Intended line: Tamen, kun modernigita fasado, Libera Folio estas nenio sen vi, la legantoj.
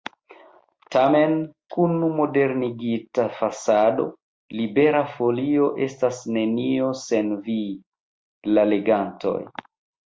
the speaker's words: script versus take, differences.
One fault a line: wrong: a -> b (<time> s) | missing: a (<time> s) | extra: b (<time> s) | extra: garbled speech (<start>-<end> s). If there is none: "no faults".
no faults